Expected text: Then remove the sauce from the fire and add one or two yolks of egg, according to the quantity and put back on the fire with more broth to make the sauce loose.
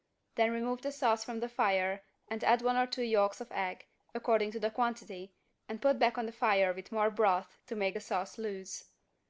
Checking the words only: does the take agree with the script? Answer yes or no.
yes